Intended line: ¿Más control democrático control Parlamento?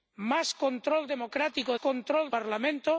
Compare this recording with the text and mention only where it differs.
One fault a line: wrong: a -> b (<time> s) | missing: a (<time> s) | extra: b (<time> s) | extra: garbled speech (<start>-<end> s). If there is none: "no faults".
no faults